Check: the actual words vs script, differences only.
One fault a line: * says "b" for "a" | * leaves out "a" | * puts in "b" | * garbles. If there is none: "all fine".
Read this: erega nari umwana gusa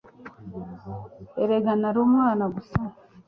all fine